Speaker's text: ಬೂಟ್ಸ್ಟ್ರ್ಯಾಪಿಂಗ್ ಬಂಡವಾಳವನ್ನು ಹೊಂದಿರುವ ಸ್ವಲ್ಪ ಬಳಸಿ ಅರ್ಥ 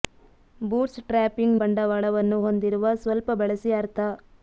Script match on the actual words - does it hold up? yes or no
yes